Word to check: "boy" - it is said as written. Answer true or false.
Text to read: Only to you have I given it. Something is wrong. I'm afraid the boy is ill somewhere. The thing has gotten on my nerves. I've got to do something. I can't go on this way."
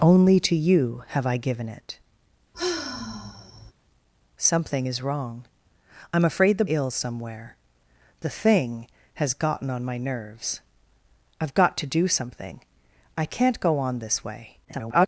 false